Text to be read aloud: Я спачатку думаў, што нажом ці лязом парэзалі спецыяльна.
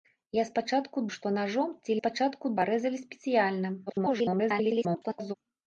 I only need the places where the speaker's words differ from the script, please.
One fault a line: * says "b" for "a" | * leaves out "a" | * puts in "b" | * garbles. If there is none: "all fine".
* leaves out "думаў"
* says "спачатку" for "лязом"
* garbles